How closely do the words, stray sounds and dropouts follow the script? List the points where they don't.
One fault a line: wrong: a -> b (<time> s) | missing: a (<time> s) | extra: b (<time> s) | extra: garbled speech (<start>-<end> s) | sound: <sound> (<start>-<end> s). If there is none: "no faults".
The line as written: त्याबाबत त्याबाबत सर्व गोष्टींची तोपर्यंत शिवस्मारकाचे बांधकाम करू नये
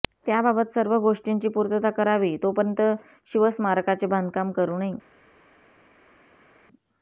missing: त्याबाबत (0.7 s)
extra: पूर्तता करावी (1.5 s)